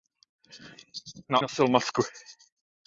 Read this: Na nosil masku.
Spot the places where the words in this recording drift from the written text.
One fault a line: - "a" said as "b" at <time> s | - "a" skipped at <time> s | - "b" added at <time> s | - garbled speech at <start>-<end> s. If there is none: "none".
none